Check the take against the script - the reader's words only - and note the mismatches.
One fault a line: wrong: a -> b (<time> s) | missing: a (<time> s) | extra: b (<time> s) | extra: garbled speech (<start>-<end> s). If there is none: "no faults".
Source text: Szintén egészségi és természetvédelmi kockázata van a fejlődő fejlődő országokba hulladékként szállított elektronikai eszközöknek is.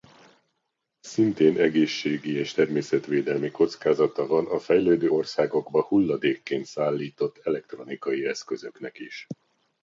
missing: fejlődő (5.1 s)